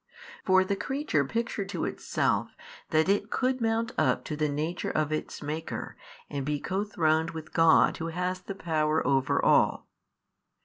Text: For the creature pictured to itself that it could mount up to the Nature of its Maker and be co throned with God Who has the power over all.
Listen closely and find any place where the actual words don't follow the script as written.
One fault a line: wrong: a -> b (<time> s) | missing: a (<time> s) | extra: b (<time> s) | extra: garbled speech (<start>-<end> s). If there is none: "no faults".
no faults